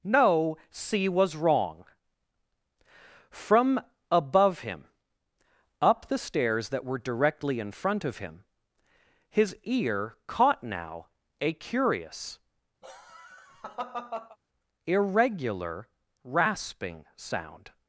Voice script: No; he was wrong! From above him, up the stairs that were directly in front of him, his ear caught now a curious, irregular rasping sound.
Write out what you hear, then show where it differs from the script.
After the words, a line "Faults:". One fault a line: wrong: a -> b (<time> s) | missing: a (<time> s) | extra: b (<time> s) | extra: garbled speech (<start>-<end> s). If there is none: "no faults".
No; c was wrong! From above him, up the stairs that were directly in front of him, his ear caught now a curious, irregular rasping sound.
Faults:
wrong: he -> c (0.7 s)